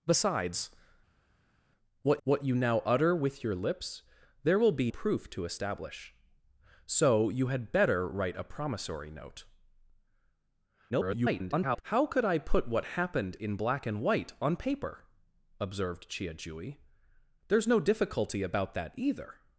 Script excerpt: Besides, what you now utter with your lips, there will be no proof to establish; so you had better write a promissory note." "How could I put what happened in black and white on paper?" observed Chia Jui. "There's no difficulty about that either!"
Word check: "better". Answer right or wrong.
right